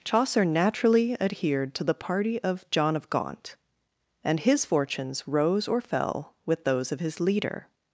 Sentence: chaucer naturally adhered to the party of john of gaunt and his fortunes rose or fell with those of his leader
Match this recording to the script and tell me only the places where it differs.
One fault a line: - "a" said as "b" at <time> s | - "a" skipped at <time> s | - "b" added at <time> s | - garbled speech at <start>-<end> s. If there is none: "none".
none